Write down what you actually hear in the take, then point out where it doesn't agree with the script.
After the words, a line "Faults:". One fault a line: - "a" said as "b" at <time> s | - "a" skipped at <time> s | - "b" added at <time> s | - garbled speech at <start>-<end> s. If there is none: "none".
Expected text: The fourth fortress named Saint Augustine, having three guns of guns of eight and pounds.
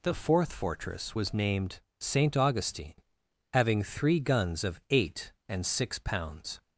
The fourth fortress was named Saint Augustine, having three guns of eight and six pounds.
Faults:
- "was" added at 1.1 s
- "guns of" skipped at 4.8 s
- "six" added at 5.7 s